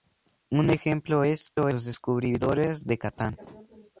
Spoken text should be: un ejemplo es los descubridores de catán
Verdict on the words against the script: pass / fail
pass